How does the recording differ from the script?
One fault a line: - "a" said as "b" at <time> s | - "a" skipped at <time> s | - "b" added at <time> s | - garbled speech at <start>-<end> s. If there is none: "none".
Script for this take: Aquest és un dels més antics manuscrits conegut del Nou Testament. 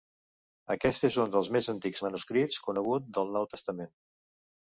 none